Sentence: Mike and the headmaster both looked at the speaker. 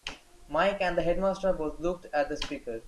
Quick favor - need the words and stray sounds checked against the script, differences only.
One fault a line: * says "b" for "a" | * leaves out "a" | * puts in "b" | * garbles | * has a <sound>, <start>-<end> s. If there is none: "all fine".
all fine